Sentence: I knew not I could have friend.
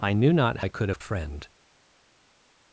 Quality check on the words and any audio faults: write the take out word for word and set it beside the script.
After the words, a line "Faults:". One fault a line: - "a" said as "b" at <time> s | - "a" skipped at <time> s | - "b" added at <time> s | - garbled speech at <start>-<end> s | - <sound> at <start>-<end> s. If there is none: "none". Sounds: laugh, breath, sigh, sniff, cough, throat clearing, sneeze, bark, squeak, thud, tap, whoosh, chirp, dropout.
I knew not I could have friend.
Faults:
none